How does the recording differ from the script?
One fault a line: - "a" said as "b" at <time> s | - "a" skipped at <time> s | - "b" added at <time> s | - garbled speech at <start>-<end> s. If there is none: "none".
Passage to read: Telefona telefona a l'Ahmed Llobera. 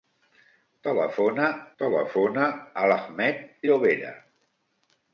none